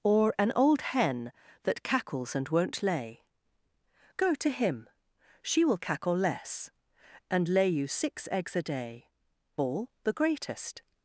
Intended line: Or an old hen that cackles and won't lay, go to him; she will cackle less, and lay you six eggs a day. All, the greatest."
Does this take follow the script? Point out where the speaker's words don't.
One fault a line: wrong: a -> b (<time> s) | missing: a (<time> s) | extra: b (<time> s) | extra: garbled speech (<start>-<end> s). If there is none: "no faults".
no faults